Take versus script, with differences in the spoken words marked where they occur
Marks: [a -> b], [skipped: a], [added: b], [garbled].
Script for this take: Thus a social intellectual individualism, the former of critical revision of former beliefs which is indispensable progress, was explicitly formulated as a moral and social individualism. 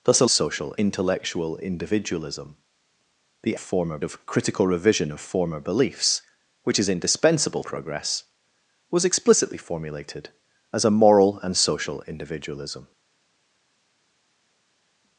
Thus a social intellectual individualism, the former of critical revision of former beliefs which is indispensable progress, was explicitly formulated as a moral and social individualism.